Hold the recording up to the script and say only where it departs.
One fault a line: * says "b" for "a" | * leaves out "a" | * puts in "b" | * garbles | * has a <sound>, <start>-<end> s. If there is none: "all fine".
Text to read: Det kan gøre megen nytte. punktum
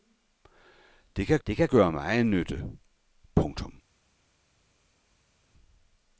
* puts in "det kan"